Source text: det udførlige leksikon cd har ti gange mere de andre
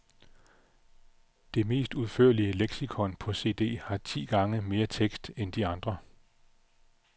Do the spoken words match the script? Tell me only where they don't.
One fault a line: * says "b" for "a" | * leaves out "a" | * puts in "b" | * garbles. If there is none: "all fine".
* puts in "mest"
* puts in "på"
* puts in "tekst end"